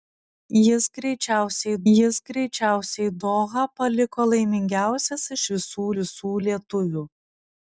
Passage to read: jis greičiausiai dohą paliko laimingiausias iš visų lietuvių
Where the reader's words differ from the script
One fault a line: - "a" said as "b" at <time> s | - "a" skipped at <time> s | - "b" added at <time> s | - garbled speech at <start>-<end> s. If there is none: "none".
- "jis greičiausiai" added at 1.9 s
- "visų" added at 6.0 s